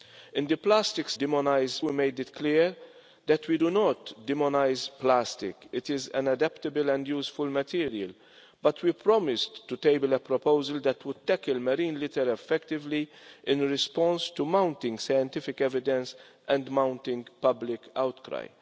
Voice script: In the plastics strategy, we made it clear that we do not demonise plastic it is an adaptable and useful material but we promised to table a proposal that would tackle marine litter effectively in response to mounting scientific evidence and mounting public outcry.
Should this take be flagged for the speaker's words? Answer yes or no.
yes